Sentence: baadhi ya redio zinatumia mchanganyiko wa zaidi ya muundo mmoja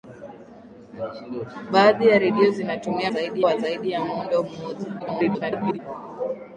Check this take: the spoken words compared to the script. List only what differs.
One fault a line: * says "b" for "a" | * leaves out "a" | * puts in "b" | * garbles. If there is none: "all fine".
* says "zaidi" for "mchanganyiko"
* garbles